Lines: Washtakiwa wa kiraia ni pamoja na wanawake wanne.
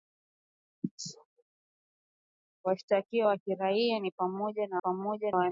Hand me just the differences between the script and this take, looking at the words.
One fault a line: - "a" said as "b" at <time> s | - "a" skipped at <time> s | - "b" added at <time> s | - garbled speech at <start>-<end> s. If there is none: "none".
- "wanawake" said as "pamoja" at 4.8 s